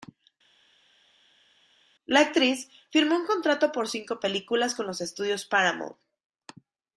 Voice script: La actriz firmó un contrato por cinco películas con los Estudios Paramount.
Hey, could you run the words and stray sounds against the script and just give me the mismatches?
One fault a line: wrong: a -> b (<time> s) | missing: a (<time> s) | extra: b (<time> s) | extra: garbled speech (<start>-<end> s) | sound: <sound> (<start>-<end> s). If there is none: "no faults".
no faults